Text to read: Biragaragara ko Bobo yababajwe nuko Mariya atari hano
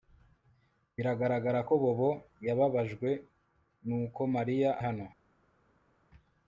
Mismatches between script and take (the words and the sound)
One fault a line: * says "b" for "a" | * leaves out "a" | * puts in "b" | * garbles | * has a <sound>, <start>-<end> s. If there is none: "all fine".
* leaves out "atari"